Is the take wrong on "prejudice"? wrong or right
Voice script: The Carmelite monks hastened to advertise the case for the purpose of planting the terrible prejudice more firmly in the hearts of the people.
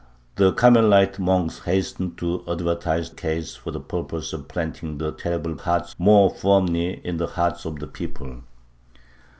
wrong